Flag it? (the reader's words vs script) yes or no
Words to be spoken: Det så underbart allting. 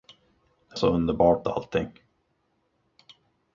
no